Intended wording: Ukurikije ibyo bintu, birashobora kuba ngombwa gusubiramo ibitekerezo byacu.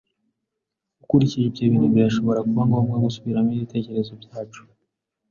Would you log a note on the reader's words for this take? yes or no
no